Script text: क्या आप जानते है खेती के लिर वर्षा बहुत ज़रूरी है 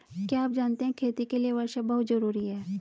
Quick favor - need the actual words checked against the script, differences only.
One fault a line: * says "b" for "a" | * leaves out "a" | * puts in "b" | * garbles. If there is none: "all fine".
all fine